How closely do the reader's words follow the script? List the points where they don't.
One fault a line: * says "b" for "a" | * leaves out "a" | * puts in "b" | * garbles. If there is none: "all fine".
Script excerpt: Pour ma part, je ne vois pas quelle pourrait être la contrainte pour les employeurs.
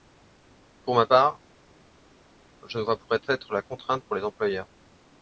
* leaves out "pas quelle"